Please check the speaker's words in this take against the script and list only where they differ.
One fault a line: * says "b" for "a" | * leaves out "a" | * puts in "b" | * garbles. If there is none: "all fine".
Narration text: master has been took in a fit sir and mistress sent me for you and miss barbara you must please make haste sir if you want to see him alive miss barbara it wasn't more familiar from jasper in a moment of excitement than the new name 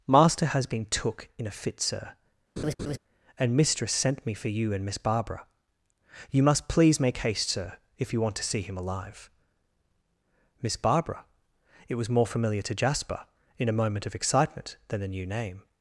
* says "was" for "wasn't"
* says "to" for "from"